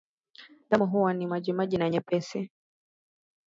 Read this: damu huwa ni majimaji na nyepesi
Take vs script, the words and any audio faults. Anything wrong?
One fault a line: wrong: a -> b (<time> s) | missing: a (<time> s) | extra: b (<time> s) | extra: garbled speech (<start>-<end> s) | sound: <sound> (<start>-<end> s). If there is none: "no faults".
no faults